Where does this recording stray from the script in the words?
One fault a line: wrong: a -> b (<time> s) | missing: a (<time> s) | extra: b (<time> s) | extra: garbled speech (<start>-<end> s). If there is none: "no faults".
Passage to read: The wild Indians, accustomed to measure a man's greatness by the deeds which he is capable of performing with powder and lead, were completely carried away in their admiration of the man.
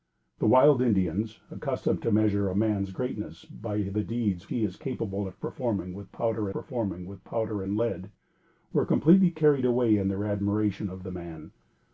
missing: which (4.5 s)
extra: performing with powder (6.5 s)